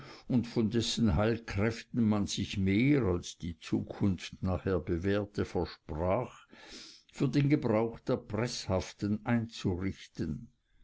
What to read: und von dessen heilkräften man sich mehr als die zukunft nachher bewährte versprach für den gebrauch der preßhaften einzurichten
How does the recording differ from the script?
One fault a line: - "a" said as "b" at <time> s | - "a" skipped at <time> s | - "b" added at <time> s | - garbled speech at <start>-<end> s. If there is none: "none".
none